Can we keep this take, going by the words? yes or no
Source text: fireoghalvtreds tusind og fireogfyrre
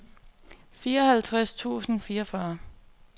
yes